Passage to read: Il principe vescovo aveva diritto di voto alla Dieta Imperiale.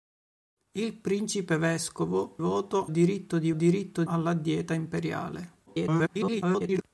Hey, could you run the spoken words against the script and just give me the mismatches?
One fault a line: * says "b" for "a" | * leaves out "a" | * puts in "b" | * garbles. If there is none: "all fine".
* says "voto" for "aveva"
* says "diritto" for "voto"
* garbles